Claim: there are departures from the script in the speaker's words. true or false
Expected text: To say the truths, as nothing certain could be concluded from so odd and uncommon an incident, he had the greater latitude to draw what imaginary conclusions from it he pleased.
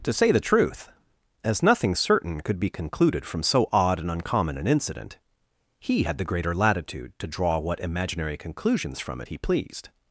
true